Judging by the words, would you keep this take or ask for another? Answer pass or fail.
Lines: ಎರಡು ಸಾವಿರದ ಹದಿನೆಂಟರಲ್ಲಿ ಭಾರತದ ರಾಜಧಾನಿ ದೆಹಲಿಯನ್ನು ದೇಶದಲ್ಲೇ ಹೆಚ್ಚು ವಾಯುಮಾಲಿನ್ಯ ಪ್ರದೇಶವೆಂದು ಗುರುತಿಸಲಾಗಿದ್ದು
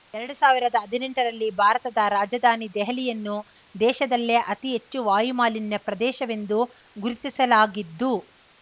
fail